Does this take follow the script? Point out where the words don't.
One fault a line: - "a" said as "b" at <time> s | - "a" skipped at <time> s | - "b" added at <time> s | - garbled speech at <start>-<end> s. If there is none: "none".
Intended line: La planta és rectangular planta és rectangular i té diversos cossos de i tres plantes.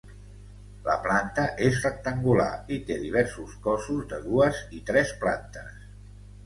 - "planta és rectangular" skipped at 2.5 s
- "dues" added at 4.3 s